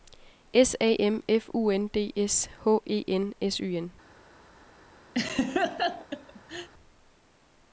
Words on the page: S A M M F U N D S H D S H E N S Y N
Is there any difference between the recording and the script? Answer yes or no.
yes